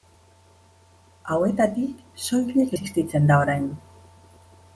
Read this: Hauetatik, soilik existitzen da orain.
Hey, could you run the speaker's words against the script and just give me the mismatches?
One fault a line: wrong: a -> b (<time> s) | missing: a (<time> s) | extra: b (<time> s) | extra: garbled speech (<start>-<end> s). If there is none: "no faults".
no faults